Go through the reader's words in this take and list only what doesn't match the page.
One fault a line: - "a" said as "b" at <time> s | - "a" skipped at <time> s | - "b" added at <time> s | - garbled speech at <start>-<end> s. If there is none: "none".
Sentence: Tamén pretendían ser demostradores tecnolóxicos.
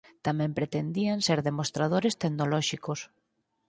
none